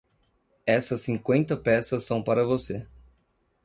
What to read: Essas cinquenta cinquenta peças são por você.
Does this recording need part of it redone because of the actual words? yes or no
yes